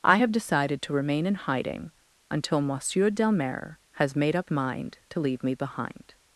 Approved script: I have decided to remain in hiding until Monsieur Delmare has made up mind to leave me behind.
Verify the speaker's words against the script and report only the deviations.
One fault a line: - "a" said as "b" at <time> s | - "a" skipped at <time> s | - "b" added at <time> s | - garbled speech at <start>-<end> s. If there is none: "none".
none